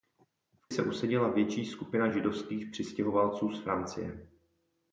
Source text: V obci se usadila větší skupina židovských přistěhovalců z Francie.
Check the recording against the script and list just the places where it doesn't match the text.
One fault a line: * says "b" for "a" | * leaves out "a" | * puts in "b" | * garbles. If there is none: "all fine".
* leaves out "obci"